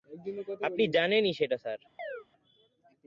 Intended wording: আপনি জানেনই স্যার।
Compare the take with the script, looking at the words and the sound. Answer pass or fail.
fail